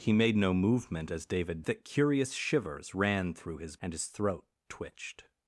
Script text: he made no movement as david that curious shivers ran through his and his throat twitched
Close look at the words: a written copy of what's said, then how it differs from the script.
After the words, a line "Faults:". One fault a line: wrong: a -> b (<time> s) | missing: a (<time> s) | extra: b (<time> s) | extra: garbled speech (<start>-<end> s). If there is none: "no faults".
he made no movement as david that curious shivers ran through his and his throat twitched
Faults:
no faults